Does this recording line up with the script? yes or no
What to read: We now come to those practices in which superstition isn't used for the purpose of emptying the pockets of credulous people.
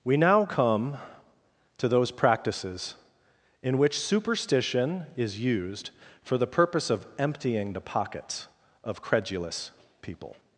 no